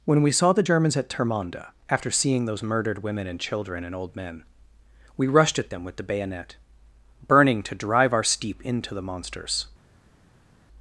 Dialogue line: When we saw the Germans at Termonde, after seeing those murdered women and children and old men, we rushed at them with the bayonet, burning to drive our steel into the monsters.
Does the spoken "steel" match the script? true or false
false